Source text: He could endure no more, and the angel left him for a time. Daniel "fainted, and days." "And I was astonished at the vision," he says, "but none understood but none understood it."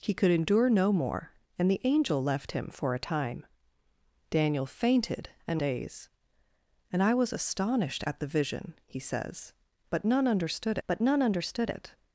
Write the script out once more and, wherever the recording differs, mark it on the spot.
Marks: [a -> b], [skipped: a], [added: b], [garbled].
He could endure no more, and the angel left him for a time. Daniel "fainted, and days." "And I was astonished at the vision," he says, "but none understood but none understood it."